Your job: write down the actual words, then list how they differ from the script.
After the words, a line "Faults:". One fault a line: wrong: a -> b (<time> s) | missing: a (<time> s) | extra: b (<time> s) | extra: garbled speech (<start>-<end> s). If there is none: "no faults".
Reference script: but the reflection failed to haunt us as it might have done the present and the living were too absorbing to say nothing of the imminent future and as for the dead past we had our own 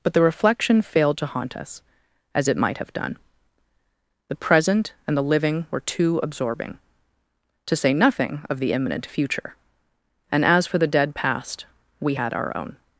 but the reflection failed to haunt us as it might have done the present and the living were too absorbing to say nothing of the imminent future and as for the dead past we had our own
Faults:
no faults